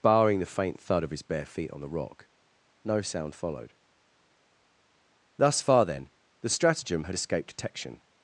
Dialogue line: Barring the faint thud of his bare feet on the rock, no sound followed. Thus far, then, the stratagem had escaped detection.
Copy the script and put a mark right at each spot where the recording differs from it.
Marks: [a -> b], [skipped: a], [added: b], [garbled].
Barring the faint thud of his bare feet on the rock, no sound followed. Thus far, then, the stratagem had escaped detection.